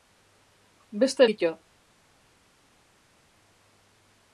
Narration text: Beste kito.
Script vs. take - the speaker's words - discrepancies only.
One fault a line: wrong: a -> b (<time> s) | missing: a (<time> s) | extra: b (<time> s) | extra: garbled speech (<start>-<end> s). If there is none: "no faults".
no faults